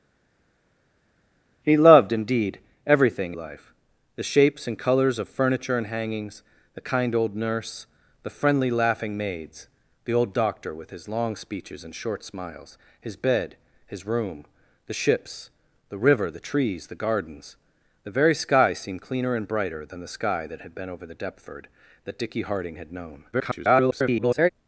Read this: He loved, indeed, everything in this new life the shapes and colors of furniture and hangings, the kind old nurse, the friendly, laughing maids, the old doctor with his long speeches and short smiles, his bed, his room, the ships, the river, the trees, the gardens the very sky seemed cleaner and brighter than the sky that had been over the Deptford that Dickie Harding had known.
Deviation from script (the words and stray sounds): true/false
true